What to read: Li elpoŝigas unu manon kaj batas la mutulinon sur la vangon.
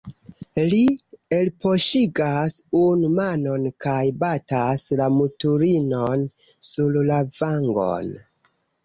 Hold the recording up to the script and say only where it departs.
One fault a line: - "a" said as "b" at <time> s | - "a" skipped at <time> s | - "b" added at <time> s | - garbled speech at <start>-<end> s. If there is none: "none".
none